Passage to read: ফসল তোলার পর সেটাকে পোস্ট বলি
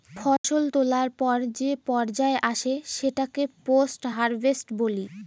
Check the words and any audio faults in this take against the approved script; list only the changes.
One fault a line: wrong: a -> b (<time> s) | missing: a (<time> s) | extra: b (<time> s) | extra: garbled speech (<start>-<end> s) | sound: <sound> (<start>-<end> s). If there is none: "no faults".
sound: dropout (0.4-0.4 s)
extra: যে পর্যায় আসে (1.6 s)
extra: হারভেস্ট (4.1 s)